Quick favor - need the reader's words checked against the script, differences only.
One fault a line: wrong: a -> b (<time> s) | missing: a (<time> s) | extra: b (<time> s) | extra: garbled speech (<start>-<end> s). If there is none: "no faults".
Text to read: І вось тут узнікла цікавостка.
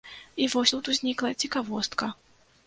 no faults